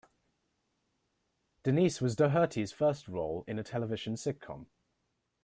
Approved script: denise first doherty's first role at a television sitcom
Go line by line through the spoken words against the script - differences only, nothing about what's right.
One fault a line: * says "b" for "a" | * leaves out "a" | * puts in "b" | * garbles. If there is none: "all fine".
* says "was" for "first"
* says "in" for "at"